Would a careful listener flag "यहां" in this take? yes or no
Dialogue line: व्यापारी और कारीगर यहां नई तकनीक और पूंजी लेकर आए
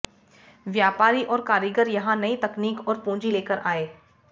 no